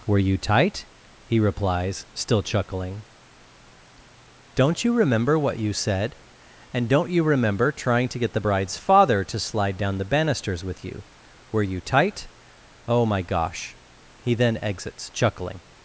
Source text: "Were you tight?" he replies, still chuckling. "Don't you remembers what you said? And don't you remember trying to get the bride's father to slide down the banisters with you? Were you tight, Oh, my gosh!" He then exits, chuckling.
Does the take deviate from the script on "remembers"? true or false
true